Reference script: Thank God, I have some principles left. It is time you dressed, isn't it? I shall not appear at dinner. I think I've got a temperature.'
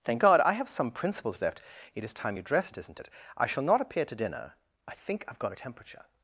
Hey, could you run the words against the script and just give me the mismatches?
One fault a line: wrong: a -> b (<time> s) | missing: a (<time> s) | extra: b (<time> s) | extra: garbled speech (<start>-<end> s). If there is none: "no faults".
wrong: at -> to (4.0 s)